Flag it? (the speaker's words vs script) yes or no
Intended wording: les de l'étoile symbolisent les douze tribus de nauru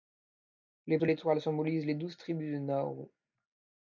no